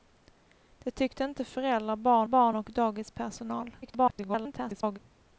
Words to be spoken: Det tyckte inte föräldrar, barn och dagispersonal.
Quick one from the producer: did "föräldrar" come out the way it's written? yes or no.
yes